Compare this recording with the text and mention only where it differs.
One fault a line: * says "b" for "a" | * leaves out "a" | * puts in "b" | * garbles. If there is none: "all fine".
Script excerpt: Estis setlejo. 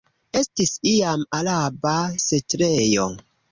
* puts in "iam araba"